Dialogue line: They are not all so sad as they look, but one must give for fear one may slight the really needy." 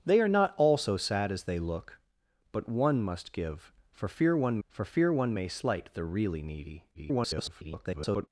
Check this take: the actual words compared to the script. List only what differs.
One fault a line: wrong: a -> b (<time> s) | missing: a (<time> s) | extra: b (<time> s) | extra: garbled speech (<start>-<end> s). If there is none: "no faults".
extra: for fear one (4.7 s)
extra: garbled speech (6.9-8.3 s)